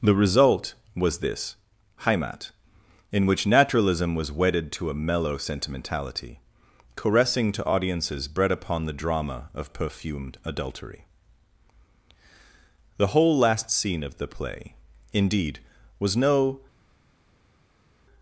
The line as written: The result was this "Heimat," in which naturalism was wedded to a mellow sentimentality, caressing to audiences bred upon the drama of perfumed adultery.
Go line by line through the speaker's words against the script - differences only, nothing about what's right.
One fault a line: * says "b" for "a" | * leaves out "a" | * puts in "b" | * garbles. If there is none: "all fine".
* puts in "The whole last scene of the play indeed was no"